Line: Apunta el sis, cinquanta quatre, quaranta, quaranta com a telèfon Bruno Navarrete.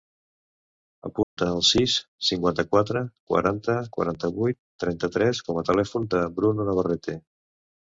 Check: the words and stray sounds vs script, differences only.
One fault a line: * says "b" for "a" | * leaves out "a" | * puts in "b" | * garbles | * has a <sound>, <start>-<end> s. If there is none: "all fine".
* has a dropout, 1.2-1.4 s
* puts in "vuit trenta tres"
* puts in "del"